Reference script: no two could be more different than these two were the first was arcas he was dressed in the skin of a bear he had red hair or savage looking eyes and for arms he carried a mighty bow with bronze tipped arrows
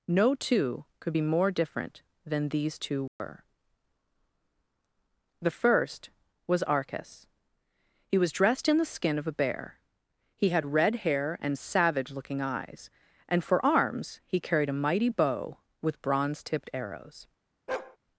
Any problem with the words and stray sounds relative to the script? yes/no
yes